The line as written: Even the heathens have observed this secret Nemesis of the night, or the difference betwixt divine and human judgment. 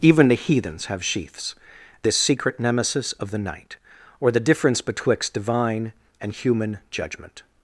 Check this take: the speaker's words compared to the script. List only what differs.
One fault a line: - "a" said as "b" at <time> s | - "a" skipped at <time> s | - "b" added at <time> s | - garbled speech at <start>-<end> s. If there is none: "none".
- "observed" said as "sheaths" at 1.1 s